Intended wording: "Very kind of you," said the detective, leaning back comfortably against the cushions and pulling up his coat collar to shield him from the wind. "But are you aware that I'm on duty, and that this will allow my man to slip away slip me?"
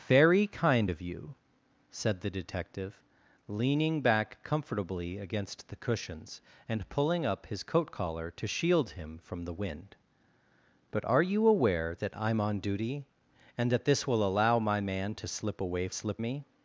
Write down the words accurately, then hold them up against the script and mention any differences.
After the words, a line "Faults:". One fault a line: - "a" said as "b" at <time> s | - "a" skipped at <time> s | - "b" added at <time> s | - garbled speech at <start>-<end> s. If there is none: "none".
"Very kind of you," said the detective, leaning back comfortably against the cushions and pulling up his coat collar to shield him from the wind. "But are you aware that I'm on duty, and that this will allow my man to slip away slip me?"
Faults:
none